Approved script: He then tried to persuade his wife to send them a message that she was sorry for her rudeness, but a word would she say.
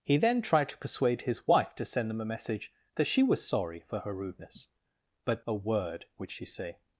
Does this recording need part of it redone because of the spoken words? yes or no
no